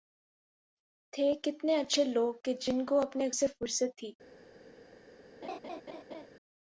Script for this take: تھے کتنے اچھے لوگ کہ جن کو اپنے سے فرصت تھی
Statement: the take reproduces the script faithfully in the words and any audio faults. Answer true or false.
false